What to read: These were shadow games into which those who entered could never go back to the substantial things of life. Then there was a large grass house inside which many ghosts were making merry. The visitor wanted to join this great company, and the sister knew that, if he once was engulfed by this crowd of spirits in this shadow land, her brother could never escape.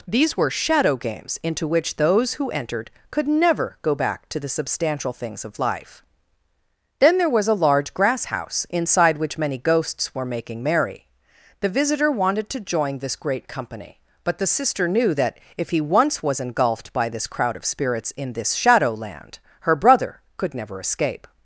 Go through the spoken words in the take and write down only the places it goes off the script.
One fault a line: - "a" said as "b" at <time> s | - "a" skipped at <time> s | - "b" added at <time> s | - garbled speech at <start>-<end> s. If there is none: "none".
- "and" said as "but" at 14.2 s